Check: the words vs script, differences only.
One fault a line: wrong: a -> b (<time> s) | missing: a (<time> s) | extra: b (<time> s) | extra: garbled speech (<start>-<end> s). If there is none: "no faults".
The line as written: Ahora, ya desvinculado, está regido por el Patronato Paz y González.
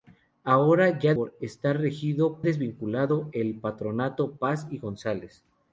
wrong: desvinculado -> por (1.1 s)
wrong: por -> desvinculado (2.4 s)